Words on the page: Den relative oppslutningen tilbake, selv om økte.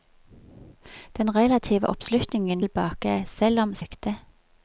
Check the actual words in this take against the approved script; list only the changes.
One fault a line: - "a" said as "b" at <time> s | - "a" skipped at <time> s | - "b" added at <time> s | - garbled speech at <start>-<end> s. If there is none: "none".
none